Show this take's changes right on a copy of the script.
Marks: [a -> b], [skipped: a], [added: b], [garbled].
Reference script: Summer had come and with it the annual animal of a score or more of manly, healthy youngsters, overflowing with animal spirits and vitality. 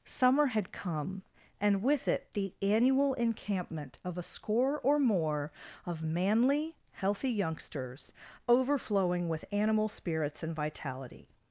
Summer had come and with it the annual [animal -> encampment] of a score or more of manly, healthy youngsters, overflowing with animal spirits and vitality.